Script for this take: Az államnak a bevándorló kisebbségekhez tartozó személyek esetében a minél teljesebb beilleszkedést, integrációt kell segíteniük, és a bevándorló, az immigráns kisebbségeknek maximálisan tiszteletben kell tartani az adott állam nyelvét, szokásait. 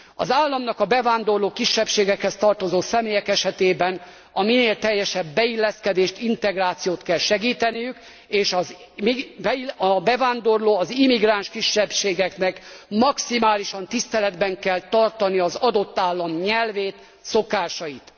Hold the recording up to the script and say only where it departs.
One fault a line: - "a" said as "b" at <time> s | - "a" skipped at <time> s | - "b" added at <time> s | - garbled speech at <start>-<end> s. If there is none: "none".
none